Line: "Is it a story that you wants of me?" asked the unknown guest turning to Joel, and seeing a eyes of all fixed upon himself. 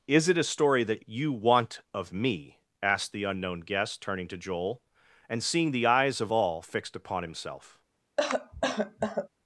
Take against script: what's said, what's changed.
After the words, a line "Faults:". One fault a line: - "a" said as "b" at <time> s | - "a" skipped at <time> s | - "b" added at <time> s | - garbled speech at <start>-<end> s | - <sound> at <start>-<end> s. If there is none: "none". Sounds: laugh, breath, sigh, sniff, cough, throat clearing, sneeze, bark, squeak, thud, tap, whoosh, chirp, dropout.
"Is it a story that you want of me?" asked the unknown guest turning to Joel, and seeing the eyes of all fixed upon himself.
Faults:
- "wants" said as "want" at 1.3 s
- "a" said as "the" at 5.7 s
- cough at 8.2-9.3 s